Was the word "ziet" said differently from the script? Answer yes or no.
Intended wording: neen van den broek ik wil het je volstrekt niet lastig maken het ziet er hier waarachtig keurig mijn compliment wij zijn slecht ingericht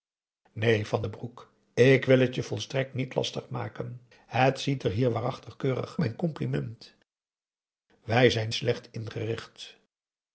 no